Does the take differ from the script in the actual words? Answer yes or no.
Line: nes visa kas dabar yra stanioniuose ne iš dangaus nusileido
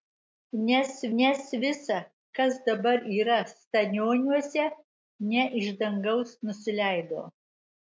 yes